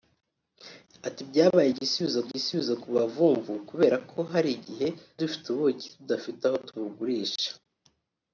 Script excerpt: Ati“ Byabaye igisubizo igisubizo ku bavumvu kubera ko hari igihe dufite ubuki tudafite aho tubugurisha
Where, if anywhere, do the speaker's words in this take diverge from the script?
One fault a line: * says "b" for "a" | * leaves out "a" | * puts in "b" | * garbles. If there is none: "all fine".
all fine